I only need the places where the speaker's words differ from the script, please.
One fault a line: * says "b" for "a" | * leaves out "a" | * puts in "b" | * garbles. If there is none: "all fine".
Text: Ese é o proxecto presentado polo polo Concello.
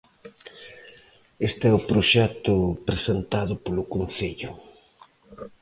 * says "Este" for "Ese"
* leaves out "polo"